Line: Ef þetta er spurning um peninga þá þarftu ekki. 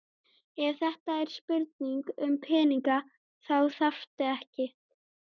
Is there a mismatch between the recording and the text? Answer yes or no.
no